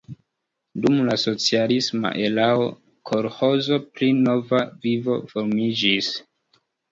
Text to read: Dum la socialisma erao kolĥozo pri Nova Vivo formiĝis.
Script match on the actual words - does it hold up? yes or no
yes